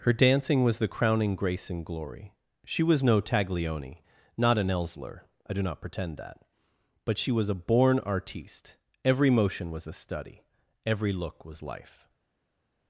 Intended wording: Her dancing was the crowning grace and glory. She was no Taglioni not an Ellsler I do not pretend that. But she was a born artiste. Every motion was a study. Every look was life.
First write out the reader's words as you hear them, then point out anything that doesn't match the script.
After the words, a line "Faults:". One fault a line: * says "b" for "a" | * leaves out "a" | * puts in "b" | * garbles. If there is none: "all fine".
Her dancing was the crowning grace and glory. She was no Taglioni not an Ellsler I do not pretend that. But she was a born artiste. Every motion was a study. Every look was life.
Faults:
all fine